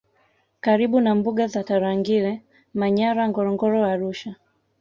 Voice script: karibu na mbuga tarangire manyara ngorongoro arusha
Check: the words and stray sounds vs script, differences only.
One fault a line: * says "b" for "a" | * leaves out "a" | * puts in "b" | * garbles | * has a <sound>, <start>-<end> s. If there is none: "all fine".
* puts in "za"